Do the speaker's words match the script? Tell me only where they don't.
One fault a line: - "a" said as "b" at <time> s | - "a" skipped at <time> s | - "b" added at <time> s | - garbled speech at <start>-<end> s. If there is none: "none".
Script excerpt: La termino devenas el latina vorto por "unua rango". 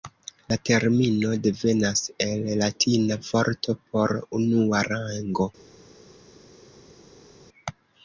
none